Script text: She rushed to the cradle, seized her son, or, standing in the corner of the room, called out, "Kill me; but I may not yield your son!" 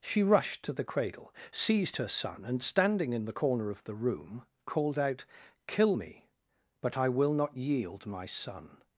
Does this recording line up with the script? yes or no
no